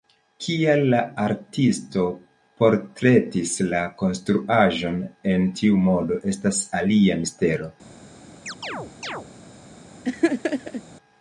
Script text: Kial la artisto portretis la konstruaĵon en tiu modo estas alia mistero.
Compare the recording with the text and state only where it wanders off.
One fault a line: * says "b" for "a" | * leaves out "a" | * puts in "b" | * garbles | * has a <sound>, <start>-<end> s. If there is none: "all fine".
* has a chirp, 8.5-9.3 s
* has a laugh, 10.0-10.8 s